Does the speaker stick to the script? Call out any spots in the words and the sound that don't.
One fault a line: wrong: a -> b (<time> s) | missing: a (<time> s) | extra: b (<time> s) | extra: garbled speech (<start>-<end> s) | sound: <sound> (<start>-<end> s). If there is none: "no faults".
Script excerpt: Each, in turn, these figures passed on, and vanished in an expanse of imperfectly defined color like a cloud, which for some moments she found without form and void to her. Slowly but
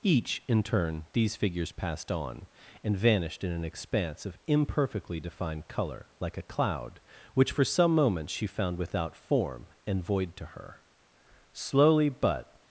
no faults